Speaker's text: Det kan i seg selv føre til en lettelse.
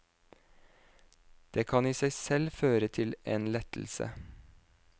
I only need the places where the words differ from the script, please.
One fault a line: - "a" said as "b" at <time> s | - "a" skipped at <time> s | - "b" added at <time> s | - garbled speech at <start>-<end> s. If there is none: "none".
none